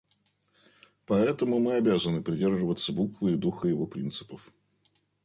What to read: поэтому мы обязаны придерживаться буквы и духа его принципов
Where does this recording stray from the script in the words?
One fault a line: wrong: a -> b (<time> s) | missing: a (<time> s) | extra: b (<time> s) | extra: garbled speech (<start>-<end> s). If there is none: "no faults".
no faults